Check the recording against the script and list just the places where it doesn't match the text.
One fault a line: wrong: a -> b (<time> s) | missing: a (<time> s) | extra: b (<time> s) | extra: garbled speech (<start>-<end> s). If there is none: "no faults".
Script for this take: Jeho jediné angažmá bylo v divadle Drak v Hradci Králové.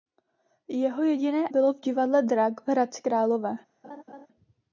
missing: angažmá (1.5 s)